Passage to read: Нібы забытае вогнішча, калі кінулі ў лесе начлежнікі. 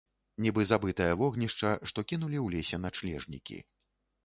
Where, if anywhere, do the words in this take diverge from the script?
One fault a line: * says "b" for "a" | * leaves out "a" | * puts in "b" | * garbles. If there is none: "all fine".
* says "што" for "калі"